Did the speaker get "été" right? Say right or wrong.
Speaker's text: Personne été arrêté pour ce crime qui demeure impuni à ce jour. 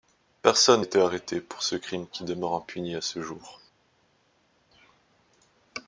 right